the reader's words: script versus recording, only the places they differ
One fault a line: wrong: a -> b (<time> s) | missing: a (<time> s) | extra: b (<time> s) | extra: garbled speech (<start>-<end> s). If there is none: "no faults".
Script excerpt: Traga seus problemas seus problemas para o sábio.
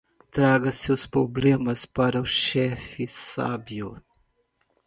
missing: seus problemas (1.9 s)
extra: chefe (2.2 s)